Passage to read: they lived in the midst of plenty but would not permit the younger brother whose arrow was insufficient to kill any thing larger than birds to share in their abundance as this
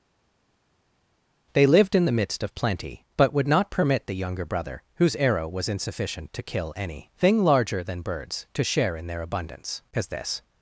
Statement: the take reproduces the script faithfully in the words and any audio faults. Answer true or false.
true